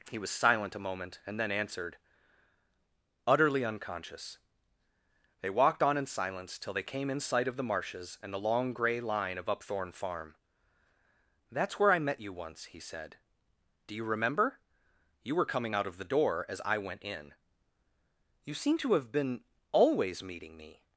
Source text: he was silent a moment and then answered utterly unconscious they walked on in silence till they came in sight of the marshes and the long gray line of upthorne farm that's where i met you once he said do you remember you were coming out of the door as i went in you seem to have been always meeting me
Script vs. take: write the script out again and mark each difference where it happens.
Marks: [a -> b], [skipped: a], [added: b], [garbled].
he was silent a moment and then answered utterly unconscious they walked on in silence till they came in sight of the marshes and the long gray line of upthorne farm that's where i met you once he said do you remember you were coming out of the door as i went in you seem to have been always meeting me